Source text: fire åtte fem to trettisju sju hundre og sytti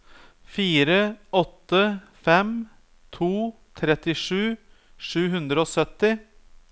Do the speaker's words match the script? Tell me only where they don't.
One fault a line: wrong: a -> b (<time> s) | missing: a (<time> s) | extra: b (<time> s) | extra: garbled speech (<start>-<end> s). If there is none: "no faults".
no faults